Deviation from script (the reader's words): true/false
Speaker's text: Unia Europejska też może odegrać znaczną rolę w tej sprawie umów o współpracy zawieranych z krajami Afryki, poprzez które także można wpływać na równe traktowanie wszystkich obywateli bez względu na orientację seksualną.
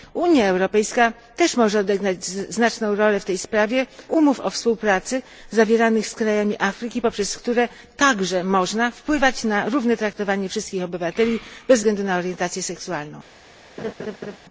false